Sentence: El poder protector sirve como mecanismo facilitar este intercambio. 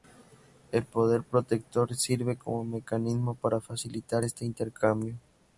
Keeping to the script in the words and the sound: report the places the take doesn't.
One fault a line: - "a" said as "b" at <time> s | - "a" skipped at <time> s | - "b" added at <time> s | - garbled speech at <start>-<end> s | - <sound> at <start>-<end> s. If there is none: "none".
- "para" added at 3.4 s